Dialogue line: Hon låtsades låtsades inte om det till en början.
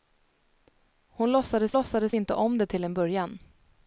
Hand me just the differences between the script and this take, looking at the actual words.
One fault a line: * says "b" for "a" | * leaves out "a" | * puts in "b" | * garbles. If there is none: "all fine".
all fine